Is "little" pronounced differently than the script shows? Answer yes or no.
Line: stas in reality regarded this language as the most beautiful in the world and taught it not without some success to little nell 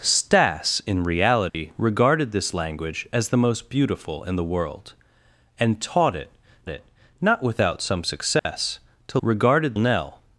yes